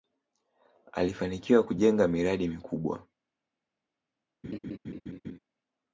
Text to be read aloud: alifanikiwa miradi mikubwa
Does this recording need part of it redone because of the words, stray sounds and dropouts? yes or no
yes